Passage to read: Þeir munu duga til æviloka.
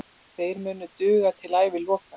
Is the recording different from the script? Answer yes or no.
no